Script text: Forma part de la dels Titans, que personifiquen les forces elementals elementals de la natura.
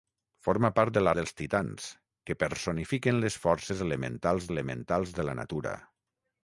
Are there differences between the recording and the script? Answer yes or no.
no